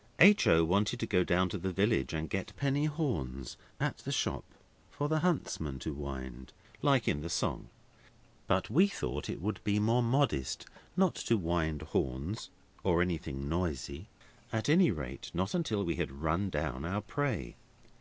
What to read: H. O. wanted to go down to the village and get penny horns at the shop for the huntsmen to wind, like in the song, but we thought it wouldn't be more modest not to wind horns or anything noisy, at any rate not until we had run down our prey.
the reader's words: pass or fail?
fail